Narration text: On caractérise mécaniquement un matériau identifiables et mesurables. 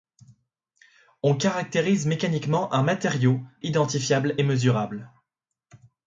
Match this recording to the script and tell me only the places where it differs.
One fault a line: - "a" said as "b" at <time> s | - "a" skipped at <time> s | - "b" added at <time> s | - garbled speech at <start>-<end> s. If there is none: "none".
none